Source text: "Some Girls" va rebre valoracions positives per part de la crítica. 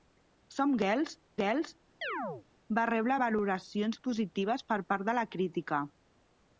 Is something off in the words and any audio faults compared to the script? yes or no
yes